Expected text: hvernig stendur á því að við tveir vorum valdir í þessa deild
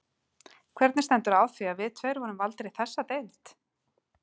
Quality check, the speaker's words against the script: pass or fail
pass